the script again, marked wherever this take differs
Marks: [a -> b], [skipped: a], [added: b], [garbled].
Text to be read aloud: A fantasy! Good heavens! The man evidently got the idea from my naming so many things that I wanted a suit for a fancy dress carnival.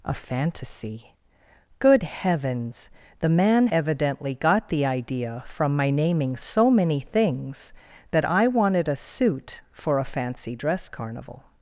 A fantasy! Good heavens! The man evidently got the idea from my naming so many things that I wanted a suit for a fancy dress carnival.